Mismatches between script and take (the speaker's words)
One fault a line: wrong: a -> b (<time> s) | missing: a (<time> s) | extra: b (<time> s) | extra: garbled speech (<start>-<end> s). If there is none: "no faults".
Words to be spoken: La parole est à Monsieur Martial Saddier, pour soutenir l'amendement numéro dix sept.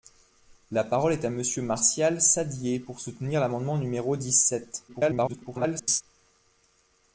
extra: garbled speech (4.9-6.0 s)